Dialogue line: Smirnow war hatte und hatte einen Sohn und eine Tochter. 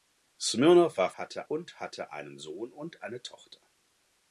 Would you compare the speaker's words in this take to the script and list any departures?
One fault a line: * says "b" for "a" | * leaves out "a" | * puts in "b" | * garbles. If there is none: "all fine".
all fine